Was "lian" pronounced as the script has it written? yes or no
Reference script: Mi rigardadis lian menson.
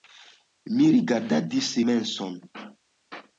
no